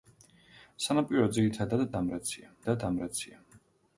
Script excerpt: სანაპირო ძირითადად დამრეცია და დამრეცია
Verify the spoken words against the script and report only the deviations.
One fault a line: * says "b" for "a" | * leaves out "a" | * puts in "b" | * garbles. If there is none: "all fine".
all fine